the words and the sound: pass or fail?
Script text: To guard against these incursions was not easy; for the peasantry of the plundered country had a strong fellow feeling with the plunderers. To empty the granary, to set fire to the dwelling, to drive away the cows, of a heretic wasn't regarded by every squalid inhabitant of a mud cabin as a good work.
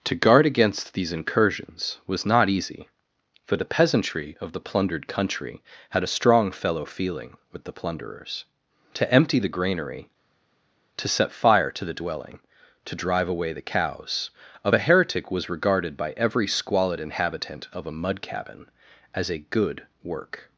fail